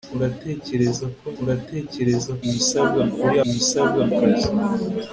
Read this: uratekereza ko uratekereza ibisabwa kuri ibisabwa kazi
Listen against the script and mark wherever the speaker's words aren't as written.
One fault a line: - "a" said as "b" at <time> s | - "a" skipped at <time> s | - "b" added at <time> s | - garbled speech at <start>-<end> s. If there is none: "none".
none